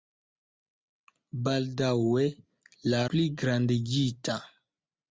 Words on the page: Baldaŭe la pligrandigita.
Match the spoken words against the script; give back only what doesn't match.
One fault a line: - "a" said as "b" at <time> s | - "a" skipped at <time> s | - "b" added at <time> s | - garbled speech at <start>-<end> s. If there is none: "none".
none